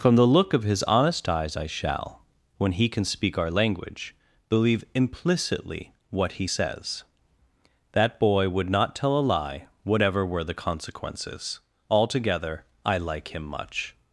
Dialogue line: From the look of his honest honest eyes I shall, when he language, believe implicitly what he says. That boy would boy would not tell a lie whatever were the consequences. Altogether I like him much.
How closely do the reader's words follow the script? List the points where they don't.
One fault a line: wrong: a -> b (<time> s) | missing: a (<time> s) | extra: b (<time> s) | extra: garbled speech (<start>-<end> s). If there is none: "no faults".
missing: honest (1.3 s)
extra: can speak our (2.9 s)
missing: boy would (8.7 s)